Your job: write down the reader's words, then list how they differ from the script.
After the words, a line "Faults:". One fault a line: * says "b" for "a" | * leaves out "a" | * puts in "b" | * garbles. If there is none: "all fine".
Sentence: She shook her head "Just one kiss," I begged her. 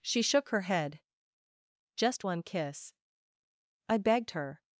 She shook her head "Just one kiss," I begged her.
Faults:
all fine